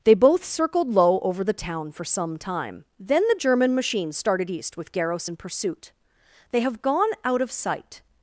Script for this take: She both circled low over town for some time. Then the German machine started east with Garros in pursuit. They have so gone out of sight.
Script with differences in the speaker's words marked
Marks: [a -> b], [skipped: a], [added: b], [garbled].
[She -> They] both circled low over [added: the] town for some time. Then the German machine started east with Garros in pursuit. They have [skipped: so] gone out of sight.